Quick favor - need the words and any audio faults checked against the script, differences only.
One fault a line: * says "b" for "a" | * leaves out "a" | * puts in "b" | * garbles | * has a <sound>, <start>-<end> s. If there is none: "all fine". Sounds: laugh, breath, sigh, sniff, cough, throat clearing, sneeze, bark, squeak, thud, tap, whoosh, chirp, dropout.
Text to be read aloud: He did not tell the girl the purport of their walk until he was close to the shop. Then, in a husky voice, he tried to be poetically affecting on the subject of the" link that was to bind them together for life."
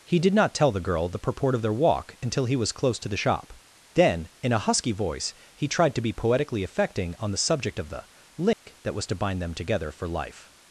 * has a dropout, 8.5-8.7 s